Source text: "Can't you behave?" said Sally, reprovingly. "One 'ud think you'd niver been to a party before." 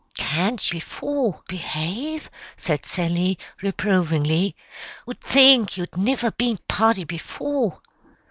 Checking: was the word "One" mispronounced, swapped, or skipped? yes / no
yes